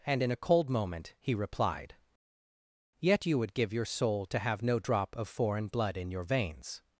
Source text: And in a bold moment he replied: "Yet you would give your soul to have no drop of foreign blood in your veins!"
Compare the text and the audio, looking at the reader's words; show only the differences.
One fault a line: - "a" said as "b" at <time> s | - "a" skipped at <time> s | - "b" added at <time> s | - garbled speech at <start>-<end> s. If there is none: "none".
- "bold" said as "cold" at 0.3 s